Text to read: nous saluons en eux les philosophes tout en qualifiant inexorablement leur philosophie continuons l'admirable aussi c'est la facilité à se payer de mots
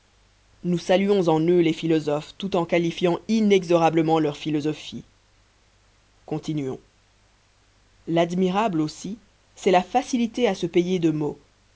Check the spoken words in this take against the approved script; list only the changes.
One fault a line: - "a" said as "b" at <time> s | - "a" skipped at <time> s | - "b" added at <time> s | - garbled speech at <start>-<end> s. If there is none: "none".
none